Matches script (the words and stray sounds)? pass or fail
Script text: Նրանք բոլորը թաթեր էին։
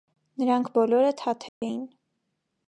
fail